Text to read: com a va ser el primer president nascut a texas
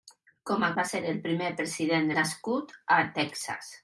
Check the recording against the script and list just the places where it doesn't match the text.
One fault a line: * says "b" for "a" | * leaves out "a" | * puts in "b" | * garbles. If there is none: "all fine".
all fine